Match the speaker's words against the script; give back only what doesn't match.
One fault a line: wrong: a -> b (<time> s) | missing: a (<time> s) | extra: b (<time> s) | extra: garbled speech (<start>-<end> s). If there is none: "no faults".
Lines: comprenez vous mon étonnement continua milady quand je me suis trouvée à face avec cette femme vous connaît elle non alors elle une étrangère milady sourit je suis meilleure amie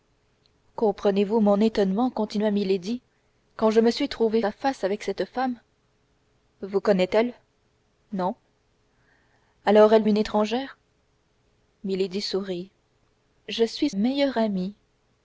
no faults